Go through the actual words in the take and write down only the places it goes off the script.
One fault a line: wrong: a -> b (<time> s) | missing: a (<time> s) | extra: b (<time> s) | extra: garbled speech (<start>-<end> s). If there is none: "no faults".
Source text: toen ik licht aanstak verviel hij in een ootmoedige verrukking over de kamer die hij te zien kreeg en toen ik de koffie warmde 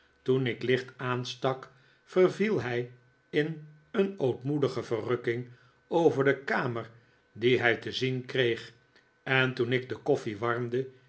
no faults